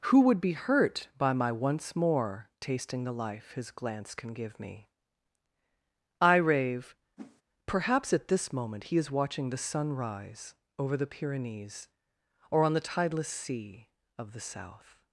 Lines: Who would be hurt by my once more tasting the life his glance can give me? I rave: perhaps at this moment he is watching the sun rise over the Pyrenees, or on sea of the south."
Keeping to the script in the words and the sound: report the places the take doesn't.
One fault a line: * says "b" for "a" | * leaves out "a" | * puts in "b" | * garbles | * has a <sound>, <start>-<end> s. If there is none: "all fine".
* has a whoosh, 7.2-7.4 s
* puts in "the tideless"